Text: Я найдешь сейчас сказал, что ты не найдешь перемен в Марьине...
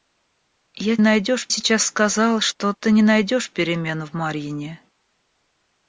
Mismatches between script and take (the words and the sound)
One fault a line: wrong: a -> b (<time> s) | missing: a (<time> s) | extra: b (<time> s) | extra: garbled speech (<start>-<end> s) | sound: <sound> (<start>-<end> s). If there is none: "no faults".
no faults